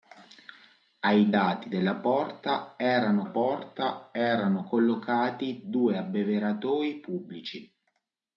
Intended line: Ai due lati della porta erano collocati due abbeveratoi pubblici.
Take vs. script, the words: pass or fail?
fail